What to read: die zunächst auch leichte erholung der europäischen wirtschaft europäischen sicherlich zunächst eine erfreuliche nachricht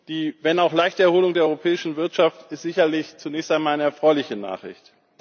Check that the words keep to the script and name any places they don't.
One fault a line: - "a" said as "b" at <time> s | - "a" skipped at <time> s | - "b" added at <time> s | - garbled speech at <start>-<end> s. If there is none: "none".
- "zunächst" said as "wenn" at 0.4 s
- "europäischen" said as "ist" at 2.5 s
- "einmal" added at 3.5 s